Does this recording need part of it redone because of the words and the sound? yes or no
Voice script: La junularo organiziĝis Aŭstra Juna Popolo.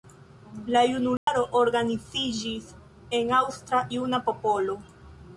yes